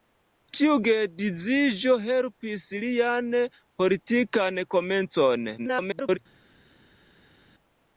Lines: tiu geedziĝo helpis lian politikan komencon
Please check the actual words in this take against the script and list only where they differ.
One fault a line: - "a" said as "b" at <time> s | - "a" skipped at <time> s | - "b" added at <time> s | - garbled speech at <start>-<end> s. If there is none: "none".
- garbled speech at 5.6-6.2 s